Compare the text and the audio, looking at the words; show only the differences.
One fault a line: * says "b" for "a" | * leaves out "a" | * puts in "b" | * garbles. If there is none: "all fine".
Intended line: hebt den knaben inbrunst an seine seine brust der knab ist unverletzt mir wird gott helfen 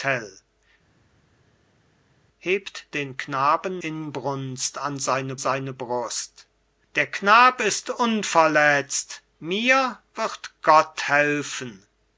all fine